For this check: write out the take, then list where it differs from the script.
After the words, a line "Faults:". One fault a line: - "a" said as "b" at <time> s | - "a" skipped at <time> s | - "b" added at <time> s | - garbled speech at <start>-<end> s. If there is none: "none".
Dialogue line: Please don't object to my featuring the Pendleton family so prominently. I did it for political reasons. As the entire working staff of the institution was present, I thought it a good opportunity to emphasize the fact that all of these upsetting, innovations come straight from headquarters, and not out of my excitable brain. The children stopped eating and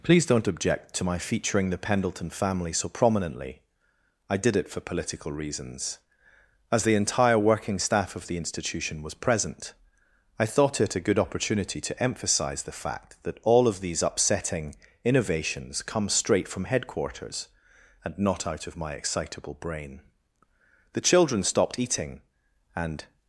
Please don't object to my featuring the Pendleton family so prominently. I did it for political reasons. As the entire working staff of the institution was present, I thought it a good opportunity to emphasize the fact that all of these upsetting, innovations come straight from headquarters, and not out of my excitable brain. The children stopped eating and
Faults:
none